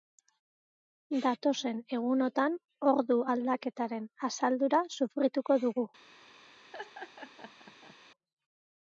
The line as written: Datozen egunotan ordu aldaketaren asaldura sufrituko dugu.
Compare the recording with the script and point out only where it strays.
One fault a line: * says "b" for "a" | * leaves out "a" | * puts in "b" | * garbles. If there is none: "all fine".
all fine